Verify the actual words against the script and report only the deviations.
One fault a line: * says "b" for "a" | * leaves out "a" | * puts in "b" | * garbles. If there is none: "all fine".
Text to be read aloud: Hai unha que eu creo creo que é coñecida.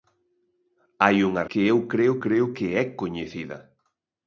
all fine